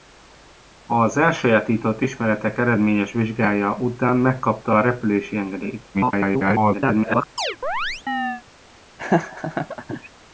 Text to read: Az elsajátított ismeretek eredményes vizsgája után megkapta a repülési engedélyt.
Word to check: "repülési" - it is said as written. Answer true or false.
true